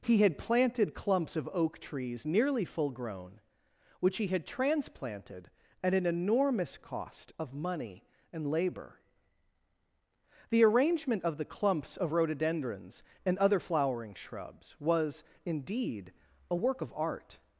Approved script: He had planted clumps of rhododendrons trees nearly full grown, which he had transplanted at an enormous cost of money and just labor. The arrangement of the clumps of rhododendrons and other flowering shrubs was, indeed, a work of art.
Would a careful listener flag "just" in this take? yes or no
yes